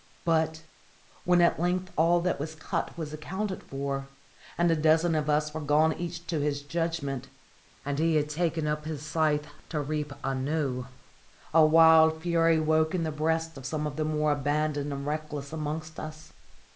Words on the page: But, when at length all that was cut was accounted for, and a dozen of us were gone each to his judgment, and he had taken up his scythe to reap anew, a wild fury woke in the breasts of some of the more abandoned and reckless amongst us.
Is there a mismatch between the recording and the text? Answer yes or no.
no